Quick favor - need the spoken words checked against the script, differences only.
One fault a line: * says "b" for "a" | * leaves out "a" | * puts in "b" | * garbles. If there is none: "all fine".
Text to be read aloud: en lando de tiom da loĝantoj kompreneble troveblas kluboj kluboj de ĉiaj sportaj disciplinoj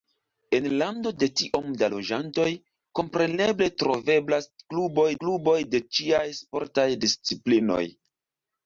all fine